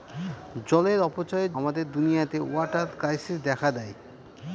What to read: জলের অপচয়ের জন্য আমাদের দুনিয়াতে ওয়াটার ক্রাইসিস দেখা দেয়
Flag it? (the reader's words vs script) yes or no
yes